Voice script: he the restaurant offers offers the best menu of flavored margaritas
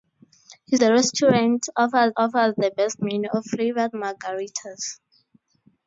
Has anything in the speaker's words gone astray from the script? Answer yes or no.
no